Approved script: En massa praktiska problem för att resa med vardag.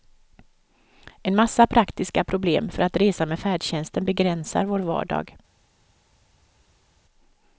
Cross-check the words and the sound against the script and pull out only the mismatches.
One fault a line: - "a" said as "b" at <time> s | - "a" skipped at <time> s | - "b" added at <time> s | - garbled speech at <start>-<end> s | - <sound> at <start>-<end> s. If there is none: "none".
- "färdtjänsten begränsar vår" added at 3.4 s